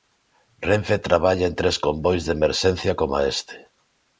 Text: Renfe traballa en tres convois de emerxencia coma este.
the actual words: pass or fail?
pass